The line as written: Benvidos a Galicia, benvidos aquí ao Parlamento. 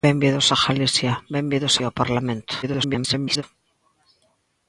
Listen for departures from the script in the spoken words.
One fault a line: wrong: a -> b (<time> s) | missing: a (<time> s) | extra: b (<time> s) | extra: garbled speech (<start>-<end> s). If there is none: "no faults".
missing: aquí (1.7 s)
extra: garbled speech (2.6-3.4 s)